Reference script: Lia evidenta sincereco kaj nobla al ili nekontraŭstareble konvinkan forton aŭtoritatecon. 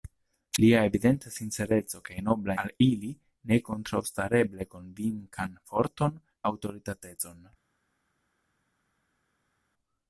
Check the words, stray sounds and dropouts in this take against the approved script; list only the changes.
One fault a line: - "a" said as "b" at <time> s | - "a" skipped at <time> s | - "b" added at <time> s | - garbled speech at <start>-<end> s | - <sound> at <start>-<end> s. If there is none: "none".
none